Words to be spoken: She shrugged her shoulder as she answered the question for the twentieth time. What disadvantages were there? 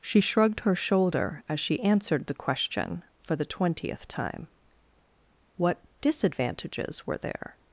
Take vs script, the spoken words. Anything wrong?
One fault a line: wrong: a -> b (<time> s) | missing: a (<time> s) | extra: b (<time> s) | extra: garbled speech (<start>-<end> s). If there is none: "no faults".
no faults